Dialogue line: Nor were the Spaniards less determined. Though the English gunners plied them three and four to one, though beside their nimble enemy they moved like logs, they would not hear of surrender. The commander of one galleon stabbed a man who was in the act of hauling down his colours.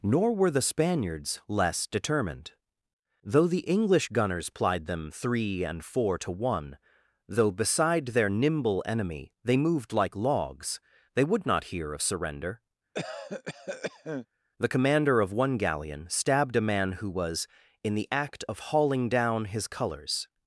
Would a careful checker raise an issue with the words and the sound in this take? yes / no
yes